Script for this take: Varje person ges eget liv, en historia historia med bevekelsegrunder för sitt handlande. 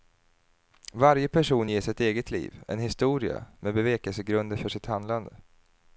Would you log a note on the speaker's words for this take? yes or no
yes